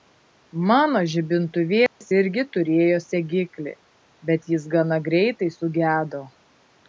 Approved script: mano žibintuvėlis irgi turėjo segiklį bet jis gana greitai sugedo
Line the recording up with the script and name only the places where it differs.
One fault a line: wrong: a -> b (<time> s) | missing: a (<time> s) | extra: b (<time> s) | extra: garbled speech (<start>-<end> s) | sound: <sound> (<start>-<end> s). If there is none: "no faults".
sound: dropout (1.9-2.0 s)